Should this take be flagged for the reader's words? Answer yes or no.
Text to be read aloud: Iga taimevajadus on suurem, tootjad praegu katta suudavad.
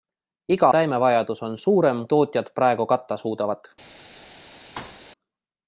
no